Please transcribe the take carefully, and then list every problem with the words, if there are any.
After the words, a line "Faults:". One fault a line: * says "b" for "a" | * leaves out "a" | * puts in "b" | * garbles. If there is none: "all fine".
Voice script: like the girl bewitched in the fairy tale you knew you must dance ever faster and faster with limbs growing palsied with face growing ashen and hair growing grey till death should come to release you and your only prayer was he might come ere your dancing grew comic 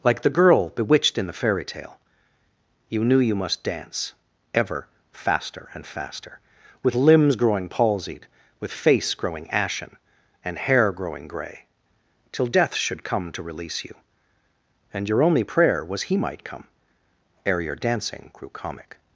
like the girl bewitched in the fairy tale you knew you must dance ever faster and faster with limbs growing palsied with face growing ashen and hair growing grey till death should come to release you and your only prayer was he might come ere your dancing grew comic
Faults:
all fine